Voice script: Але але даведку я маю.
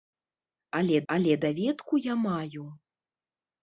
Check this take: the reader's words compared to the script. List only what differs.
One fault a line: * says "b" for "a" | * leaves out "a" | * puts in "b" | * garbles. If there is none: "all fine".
all fine